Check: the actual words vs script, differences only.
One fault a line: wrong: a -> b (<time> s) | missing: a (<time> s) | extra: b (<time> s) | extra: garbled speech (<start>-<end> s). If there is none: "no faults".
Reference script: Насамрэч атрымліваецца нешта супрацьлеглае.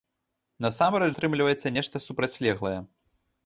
no faults